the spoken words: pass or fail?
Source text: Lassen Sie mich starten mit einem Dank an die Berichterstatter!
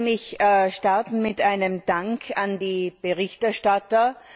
pass